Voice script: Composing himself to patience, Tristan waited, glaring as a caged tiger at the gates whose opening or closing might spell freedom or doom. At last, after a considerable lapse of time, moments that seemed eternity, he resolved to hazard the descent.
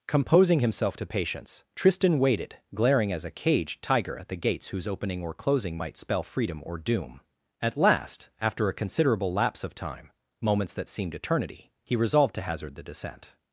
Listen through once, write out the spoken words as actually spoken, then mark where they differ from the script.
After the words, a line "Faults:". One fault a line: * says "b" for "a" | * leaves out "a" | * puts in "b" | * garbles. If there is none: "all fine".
Composing himself to patience, Tristan waited, glaring as a caged tiger at the gates whose opening or closing might spell freedom or doom. At last, after a considerable lapse of time, moments that seemed eternity, he resolved to hazard the descent.
Faults:
all fine